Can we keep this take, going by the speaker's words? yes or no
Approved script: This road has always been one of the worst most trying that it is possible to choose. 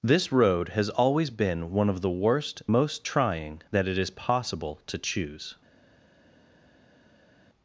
yes